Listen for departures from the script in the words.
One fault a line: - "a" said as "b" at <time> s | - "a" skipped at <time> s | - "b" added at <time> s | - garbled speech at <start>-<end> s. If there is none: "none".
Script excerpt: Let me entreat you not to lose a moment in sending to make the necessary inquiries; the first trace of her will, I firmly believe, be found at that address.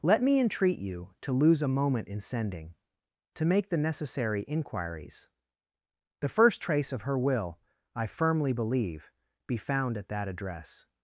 - "not" skipped at 1.1 s